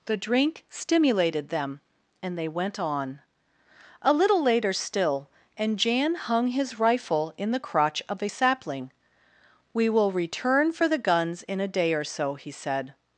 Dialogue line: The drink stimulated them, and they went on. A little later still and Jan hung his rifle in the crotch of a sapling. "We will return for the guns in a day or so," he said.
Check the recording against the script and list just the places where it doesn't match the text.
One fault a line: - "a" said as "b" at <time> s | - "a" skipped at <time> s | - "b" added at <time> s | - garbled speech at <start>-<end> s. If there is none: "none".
none